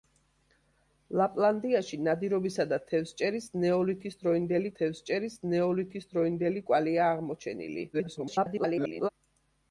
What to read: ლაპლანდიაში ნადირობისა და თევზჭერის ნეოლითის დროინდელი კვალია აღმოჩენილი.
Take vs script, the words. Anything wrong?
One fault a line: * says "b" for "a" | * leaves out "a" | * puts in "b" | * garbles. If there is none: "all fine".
* puts in "თევზჭერის ნეოლითის დროინდელი"
* garbles